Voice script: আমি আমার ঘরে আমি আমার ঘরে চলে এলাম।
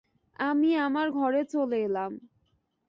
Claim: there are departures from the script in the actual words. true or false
true